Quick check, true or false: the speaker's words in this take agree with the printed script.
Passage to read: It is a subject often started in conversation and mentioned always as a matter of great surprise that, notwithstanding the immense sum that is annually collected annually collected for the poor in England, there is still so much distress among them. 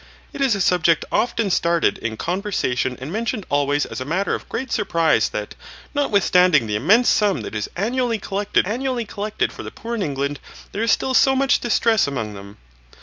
true